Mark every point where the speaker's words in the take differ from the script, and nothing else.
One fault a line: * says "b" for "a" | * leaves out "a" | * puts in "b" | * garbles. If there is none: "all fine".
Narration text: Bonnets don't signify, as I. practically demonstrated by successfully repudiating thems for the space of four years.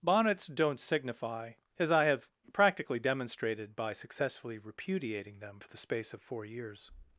* puts in "have"
* says "them" for "thems"